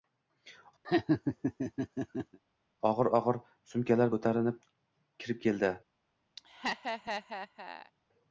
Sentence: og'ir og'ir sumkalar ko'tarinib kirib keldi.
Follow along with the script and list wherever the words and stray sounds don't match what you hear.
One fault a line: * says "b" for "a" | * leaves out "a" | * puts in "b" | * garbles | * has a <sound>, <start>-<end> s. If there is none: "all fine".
* has a laugh, 0.8-2.4 s
* has a laugh, 6.4-7.9 s